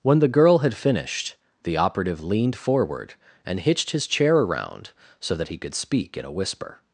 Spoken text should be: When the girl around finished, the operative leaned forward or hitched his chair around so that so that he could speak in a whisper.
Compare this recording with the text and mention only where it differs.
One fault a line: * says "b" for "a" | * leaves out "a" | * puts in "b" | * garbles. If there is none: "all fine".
* says "had" for "around"
* says "and" for "or"
* leaves out "so that"